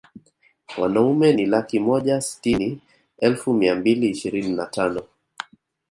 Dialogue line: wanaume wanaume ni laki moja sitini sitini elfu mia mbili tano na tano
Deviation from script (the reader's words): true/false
true